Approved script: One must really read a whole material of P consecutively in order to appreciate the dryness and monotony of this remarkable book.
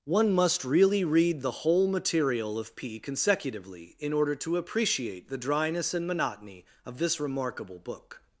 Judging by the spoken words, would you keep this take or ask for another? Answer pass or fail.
fail